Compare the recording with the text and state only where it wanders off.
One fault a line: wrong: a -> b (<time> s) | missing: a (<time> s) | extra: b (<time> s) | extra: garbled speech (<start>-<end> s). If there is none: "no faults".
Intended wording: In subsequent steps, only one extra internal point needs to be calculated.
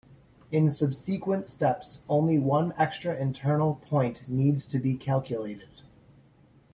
no faults